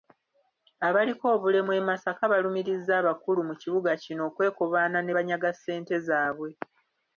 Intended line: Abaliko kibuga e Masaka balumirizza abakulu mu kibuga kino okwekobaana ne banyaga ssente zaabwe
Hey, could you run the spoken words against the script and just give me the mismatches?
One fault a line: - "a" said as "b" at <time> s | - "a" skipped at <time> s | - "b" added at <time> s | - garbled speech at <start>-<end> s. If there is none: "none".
- "kibuga" said as "obulemu" at 1.4 s